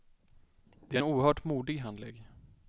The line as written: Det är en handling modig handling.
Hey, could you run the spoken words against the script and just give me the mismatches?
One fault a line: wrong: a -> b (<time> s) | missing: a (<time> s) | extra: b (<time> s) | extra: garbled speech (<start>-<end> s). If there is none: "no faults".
wrong: handling -> oerhört (1.0 s)